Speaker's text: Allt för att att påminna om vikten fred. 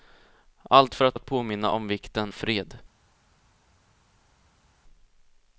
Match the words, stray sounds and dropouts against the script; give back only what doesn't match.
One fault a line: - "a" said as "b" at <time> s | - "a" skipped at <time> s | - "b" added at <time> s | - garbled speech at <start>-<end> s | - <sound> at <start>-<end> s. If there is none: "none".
none